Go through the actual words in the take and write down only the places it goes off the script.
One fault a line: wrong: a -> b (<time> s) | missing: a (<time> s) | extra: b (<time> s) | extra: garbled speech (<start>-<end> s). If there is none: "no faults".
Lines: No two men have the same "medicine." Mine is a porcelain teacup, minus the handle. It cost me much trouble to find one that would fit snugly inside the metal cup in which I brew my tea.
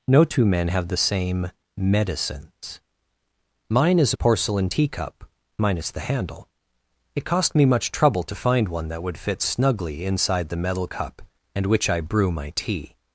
wrong: medicine -> medicines (1.8 s)
wrong: in -> and (11.5 s)